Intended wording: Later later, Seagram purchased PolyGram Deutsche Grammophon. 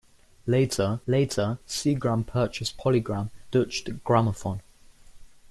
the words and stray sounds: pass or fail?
pass